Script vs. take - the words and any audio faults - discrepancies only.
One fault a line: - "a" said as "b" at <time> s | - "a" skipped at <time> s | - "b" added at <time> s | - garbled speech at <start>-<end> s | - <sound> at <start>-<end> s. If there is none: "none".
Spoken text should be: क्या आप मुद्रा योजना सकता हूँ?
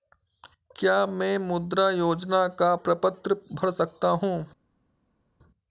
- "आप" said as "मैं" at 1.1 s
- "का प्रपत्र भर" added at 2.5 s